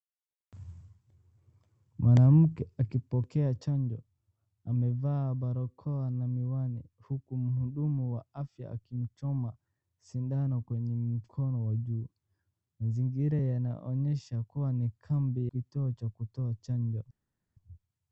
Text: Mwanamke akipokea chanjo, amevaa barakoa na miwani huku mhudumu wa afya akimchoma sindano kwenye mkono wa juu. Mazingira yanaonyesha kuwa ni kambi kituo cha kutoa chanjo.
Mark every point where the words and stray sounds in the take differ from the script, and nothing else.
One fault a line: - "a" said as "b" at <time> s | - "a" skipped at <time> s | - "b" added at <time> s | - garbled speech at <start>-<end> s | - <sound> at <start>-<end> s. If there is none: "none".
none